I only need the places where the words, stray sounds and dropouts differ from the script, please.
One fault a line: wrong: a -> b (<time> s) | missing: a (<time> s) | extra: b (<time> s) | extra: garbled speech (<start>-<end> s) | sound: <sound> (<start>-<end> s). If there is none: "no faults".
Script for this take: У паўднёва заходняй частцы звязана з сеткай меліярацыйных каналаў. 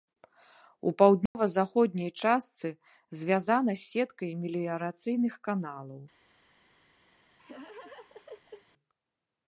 sound: dropout (1.3-1.4 s)
sound: laugh (7.4-8.7 s)